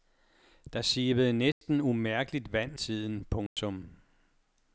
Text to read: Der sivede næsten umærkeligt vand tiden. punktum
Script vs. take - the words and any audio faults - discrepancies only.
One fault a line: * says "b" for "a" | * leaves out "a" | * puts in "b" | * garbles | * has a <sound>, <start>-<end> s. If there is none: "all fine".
* has a dropout, 1.5-1.6 s
* has a dropout, 3.5-3.6 s